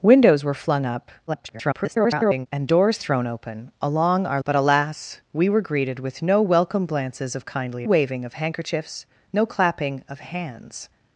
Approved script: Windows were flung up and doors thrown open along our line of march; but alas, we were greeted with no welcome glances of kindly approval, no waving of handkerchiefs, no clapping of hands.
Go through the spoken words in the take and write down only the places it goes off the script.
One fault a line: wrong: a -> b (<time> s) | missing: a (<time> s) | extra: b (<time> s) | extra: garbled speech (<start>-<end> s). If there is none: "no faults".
extra: garbled speech (1.3-2.5 s)
missing: line of march (4.4 s)
missing: approval no (7.8 s)